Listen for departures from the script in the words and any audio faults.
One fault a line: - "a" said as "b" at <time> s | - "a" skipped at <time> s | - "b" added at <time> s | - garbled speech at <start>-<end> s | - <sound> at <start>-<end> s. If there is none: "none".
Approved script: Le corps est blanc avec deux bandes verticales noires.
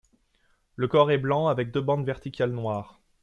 none